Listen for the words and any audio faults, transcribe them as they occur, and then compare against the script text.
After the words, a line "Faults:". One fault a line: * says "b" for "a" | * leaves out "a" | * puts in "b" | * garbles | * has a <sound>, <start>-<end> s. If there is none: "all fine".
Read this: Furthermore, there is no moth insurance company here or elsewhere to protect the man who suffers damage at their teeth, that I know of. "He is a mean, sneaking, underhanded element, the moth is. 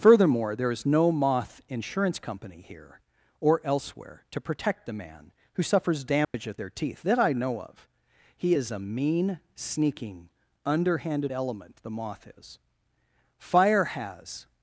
Furthermore, there is no moth insurance company here or elsewhere to protect the man who suffers damage at their teeth, that I know of. "He is a mean, sneaking, underhanded element, the moth is. Fire has
Faults:
* has a dropout, 6.2-6.3 s
* puts in "Fire has"